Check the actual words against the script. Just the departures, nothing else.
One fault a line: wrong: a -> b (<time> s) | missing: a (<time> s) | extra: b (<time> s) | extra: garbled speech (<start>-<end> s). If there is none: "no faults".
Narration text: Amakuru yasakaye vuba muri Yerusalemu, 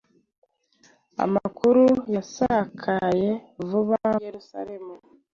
missing: muri (4.0 s)